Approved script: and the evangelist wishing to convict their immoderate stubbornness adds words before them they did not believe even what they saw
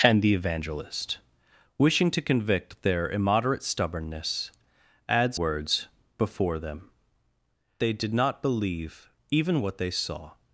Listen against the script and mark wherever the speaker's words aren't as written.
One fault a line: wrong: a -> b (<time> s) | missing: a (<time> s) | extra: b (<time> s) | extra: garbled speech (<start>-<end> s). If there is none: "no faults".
no faults